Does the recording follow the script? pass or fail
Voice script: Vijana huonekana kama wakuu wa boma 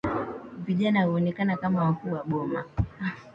pass